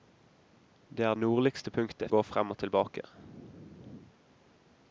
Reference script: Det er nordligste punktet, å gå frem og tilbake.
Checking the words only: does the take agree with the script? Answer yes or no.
yes